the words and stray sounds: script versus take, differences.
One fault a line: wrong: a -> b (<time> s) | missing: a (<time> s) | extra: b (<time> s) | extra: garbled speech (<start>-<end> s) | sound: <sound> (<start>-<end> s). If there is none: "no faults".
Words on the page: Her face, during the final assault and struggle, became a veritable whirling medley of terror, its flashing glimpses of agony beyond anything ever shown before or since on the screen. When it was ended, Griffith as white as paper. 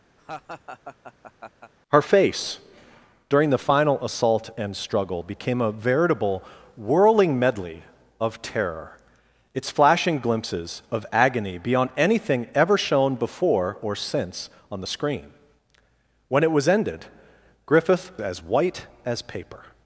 sound: laugh (0.2-1.7 s)